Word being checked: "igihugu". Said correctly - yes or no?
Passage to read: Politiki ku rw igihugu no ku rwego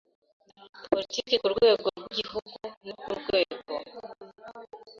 yes